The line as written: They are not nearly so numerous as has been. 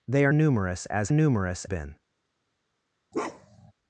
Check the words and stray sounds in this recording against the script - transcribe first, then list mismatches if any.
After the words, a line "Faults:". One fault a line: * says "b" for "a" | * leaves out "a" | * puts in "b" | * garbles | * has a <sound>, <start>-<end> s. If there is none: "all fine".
They are numerous as numerous been.
Faults:
* leaves out "not nearly so"
* says "numerous" for "has"
* has a bark, 3.1-3.7 s